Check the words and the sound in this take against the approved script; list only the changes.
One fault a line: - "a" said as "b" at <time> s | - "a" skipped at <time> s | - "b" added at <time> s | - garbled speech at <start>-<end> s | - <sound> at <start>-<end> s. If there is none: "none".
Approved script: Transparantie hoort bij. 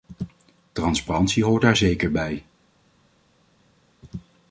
- "daar zeker" added at 1.6 s